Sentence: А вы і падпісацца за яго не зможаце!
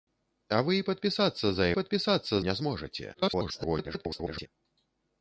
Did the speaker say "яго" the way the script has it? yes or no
no